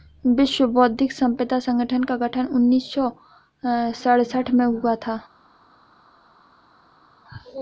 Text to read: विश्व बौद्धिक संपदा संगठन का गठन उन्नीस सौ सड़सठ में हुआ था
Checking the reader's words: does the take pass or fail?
pass